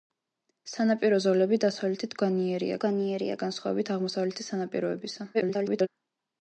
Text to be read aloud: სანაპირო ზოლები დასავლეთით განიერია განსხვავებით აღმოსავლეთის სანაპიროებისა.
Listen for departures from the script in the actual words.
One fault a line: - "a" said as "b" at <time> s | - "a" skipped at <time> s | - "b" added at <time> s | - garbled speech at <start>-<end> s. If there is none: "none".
- "განიერია" added at 2.8 s
- garbled speech at 5.3-5.9 s